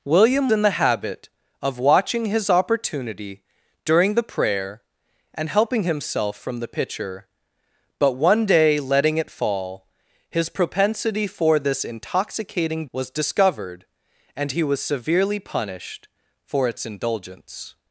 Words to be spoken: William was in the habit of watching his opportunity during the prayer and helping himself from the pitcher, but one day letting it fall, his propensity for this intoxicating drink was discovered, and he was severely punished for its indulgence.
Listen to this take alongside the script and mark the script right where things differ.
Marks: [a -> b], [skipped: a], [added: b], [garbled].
William [skipped: was] in the habit of watching his opportunity during the prayer and helping himself from the pitcher, but one day letting it fall, his propensity for this intoxicating [skipped: drink] was discovered, and he was severely punished for its indulgence.